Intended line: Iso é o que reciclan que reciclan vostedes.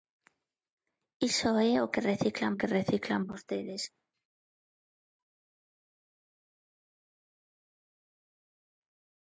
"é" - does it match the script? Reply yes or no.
yes